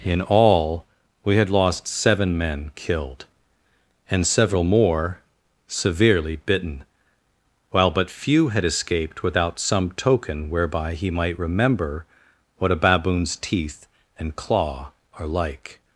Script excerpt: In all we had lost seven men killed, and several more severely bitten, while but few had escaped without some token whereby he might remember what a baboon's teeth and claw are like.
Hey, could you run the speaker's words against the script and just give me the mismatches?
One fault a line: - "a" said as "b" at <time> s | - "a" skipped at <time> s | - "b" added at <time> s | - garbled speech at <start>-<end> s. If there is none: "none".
none